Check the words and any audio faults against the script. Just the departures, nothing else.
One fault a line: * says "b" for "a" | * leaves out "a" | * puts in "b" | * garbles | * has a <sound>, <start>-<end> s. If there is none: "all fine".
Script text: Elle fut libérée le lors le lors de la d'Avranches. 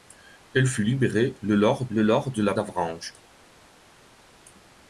all fine